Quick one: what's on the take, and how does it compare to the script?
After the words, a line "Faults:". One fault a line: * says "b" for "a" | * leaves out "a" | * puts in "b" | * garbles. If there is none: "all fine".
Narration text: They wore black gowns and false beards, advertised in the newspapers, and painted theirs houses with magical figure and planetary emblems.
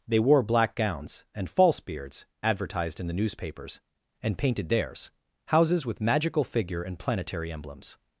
They wore black gowns and false beards, advertised in the newspapers, and painted theirs houses with magical figure and planetary emblems.
Faults:
all fine